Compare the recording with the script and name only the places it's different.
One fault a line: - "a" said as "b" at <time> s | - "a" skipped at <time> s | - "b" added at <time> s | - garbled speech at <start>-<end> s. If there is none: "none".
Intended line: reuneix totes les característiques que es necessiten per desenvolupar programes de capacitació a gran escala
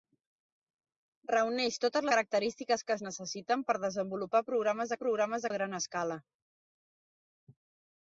- "les" skipped at 2.1 s
- "capacitació" said as "programes" at 5.0 s